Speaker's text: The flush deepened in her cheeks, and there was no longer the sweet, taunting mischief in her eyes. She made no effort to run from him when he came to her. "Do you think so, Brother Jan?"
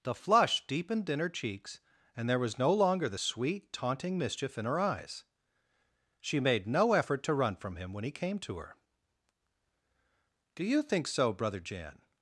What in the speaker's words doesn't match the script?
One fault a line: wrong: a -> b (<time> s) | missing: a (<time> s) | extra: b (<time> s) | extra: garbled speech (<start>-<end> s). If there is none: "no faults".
no faults